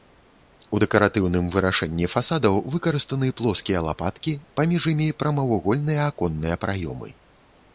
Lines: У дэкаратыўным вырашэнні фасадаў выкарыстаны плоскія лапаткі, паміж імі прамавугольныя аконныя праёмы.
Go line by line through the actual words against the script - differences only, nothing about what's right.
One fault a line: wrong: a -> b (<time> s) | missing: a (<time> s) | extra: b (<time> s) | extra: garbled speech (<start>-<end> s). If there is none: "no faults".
no faults